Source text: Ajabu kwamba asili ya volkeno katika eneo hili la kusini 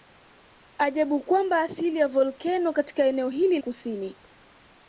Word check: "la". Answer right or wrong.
wrong